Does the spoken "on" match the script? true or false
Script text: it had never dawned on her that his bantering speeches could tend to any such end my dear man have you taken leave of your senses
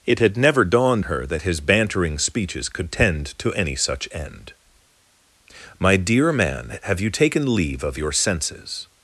false